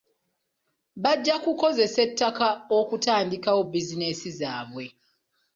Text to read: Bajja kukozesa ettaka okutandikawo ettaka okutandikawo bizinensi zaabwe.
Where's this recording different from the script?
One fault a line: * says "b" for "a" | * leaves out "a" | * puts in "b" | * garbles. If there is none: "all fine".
* leaves out "ettaka okutandikawo"